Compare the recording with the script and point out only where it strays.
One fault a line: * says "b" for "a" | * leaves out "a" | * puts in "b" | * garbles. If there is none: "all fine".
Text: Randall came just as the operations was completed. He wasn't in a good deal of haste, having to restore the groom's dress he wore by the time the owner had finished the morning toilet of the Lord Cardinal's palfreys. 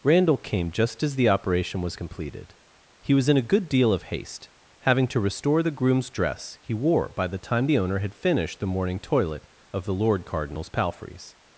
* says "operation" for "operations"
* says "was" for "wasn't"